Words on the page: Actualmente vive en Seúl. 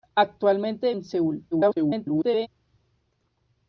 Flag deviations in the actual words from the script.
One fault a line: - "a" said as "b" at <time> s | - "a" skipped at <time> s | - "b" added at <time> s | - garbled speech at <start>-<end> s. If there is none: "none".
- "vive" skipped at 0.9 s
- garbled speech at 1.5-2.5 s